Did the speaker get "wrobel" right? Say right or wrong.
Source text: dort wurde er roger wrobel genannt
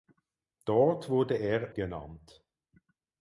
wrong